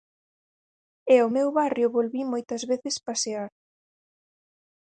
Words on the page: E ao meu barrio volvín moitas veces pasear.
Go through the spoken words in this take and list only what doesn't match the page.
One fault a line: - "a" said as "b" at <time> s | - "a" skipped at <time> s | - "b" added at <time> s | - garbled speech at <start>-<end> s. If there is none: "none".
none